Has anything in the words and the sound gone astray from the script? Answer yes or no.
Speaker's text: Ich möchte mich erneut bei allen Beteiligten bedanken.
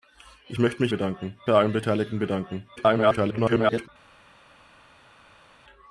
yes